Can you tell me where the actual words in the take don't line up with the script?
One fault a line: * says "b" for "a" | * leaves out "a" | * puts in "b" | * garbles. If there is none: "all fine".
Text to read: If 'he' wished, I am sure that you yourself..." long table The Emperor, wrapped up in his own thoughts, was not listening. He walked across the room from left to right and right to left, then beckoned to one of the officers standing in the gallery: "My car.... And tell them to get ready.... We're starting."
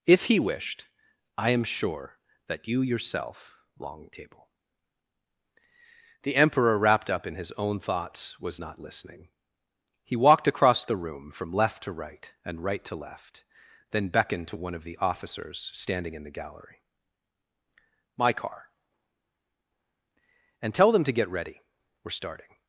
all fine